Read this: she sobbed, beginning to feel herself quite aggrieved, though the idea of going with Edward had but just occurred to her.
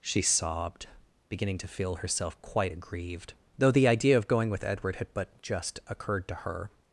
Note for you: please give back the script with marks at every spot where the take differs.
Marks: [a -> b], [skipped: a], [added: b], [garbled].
she sobbed, beginning to feel herself quite aggrieved, though the idea of going with Edward had but just occurred to her.